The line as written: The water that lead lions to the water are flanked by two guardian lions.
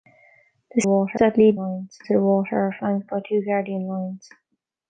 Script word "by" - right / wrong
right